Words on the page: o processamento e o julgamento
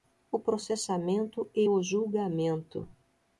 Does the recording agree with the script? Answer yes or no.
yes